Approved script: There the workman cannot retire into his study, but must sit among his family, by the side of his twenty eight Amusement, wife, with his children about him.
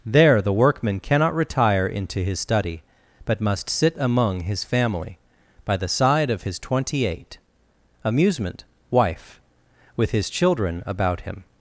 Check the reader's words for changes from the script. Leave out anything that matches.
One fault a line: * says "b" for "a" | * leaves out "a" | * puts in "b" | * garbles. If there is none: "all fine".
all fine